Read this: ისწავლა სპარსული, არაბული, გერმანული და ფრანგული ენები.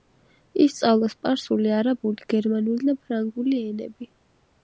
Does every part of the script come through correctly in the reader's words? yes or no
yes